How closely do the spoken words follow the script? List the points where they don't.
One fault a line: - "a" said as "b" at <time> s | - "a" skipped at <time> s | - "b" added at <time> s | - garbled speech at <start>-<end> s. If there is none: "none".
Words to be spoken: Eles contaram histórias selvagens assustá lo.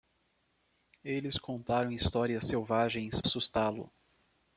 none